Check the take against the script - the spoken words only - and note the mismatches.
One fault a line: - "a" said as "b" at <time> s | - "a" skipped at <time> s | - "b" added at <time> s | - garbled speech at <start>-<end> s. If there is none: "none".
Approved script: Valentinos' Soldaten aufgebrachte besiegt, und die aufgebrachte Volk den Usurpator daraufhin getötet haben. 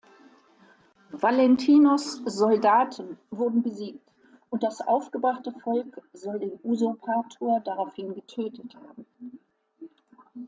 - "aufgebrachte" said as "wurden" at 3.3 s
- "die" said as "das" at 4.6 s
- "soll" added at 6.1 s